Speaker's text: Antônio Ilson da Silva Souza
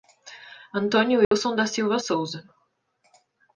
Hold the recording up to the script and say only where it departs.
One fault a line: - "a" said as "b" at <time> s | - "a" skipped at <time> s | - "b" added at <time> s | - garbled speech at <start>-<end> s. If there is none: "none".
none